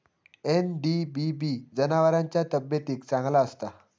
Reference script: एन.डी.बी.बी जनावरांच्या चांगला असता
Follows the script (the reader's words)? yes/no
no